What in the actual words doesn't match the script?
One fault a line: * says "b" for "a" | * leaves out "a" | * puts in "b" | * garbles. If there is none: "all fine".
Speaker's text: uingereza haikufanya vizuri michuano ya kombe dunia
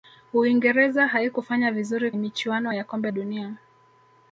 all fine